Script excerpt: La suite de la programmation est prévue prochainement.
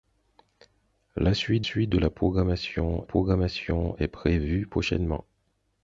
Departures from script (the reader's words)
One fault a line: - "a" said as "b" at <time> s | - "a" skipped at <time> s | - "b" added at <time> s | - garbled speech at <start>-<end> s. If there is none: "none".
- "suite" added at 1.6 s
- "programmation" added at 3.0 s